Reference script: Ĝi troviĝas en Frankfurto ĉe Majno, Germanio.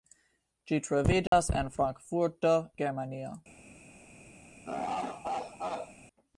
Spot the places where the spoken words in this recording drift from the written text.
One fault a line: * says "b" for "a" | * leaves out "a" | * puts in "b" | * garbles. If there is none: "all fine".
* leaves out "ĉe Majno"